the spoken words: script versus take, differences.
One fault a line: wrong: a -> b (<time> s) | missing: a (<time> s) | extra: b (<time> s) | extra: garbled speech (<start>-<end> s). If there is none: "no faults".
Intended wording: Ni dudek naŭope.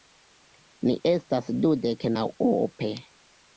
extra: estas (1.1 s)